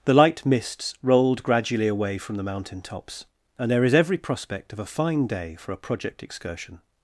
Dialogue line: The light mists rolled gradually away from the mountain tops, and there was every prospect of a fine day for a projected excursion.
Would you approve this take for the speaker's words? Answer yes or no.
no